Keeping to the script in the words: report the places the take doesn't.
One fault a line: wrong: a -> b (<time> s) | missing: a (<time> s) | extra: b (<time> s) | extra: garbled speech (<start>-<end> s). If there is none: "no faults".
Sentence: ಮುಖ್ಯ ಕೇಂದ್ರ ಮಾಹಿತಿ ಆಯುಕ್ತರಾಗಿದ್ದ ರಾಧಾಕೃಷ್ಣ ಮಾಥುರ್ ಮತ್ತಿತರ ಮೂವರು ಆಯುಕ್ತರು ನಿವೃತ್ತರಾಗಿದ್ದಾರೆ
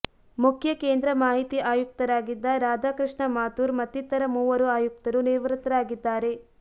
no faults